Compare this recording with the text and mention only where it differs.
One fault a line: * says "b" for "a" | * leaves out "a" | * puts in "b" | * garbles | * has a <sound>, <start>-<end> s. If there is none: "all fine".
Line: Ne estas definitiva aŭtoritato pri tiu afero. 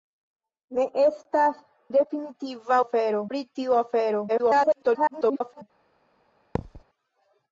* says "afero" for "aŭtoritato"
* garbles
* has a thud, 6.5-6.8 s